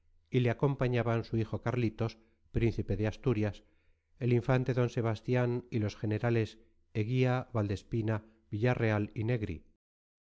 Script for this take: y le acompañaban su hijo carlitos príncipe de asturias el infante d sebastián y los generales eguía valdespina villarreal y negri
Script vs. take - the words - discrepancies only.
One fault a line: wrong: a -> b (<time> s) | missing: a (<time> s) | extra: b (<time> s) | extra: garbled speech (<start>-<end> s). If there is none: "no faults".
no faults